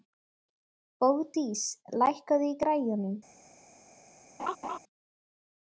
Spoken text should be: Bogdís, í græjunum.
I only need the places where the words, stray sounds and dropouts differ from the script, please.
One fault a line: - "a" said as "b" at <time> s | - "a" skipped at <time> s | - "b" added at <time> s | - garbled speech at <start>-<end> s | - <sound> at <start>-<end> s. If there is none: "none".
- "lækkaðu" added at 2.0 s
- laugh at 4.4-4.8 s